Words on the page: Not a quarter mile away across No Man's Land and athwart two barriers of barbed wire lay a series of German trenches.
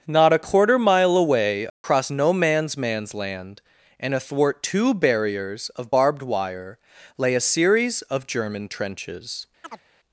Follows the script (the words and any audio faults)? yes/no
no